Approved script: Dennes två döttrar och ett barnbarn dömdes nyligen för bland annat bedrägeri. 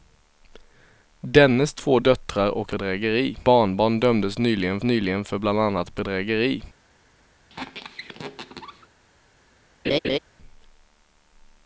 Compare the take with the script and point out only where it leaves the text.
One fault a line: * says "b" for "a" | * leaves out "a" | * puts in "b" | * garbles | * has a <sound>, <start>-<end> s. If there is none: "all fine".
* says "bedrägeri" for "ett"
* puts in "nyligen"
* has a squeak, 7.5-8.9 s
* has a laugh, 9.8-10.2 s